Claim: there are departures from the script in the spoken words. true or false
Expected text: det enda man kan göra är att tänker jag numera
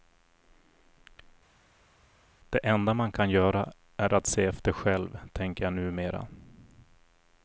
true